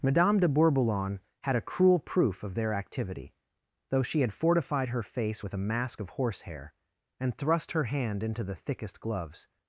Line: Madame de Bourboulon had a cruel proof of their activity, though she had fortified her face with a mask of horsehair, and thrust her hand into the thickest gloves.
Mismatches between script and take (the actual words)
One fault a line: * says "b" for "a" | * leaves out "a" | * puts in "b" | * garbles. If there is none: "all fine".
all fine